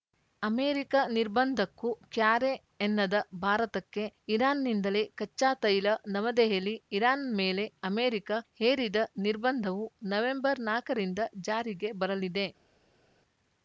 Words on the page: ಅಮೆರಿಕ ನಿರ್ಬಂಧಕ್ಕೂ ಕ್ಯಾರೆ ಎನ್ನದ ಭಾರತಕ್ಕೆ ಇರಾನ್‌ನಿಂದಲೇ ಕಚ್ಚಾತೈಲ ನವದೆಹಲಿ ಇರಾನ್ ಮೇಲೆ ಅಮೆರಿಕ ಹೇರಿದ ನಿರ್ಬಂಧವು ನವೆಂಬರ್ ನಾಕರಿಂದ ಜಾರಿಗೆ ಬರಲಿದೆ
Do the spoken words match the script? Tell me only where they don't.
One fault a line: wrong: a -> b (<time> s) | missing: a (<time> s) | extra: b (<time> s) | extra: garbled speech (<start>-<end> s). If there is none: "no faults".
no faults